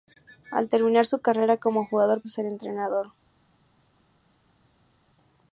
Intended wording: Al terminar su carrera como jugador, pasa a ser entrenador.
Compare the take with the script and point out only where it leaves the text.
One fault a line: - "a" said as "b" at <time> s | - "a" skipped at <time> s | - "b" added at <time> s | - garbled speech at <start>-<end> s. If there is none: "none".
- "pasa" skipped at 2.2 s